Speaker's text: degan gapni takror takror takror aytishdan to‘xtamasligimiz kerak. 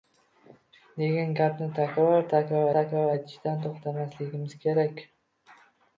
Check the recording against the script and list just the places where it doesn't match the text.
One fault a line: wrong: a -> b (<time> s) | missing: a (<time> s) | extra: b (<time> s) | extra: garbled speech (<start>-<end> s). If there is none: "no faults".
no faults